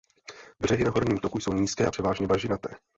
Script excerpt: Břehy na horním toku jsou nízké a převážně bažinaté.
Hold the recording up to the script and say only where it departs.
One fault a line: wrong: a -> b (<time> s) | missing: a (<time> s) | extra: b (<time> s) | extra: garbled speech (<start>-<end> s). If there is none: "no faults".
no faults